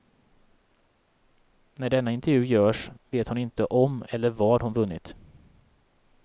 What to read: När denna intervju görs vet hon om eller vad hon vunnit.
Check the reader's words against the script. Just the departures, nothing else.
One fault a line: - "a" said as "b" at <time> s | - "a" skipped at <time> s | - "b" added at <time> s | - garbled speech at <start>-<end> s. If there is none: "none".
- "inte" added at 3.4 s